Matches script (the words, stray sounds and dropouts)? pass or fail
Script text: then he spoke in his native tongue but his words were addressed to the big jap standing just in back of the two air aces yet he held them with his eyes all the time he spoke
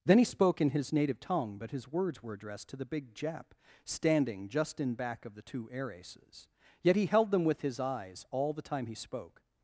pass